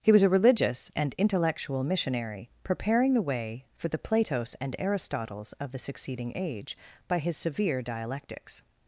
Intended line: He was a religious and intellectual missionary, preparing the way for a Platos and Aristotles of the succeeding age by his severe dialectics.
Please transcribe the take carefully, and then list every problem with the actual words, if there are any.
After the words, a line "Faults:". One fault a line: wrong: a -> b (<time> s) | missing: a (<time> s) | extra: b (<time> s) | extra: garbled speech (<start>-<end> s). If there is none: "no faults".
He was a religious and intellectual missionary, preparing the way for the Platos and Aristotles of the succeeding age by his severe dialectics.
Faults:
wrong: a -> the (3.9 s)